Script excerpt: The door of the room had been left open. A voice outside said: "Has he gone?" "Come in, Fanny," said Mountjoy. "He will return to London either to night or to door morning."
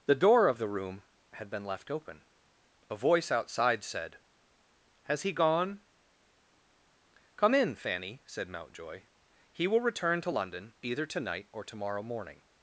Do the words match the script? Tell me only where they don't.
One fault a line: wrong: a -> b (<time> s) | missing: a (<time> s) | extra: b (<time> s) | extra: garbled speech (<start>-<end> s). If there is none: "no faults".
wrong: door -> morrow (11.8 s)